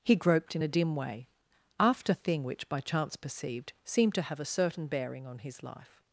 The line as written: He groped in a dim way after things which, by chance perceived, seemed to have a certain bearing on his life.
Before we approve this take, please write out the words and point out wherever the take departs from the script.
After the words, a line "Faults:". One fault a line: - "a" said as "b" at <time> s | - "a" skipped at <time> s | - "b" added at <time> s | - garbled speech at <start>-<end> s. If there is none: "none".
He groped in a dim way after thing which, by chance perceived, seemed to have a certain bearing on his life.
Faults:
- "things" said as "thing" at 2.1 s